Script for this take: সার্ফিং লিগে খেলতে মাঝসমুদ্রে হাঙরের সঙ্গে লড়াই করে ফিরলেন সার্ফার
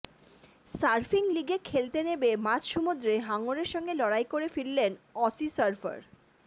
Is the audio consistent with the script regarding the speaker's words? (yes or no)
no